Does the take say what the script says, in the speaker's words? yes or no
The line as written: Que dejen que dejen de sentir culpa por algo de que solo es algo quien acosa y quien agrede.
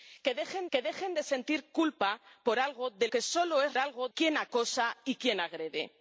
yes